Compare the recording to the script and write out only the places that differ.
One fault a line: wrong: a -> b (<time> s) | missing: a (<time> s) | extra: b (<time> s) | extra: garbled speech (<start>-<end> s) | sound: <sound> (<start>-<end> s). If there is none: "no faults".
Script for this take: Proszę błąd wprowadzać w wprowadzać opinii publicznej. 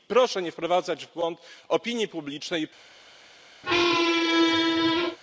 wrong: błąd -> nie (0.4 s)
wrong: wprowadzać -> błąd (1.1 s)
sound: squeak (3.6-5.2 s)